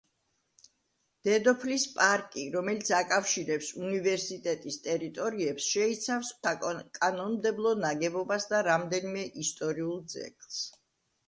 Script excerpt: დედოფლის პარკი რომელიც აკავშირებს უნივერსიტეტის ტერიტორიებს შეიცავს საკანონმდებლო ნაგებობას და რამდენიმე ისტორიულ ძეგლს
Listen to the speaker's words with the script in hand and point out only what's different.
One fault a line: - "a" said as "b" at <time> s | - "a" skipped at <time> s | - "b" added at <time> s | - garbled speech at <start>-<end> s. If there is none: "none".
none